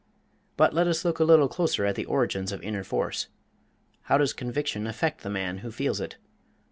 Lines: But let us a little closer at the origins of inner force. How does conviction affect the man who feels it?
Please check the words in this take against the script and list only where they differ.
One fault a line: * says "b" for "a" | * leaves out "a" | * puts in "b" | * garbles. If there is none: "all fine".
* puts in "look"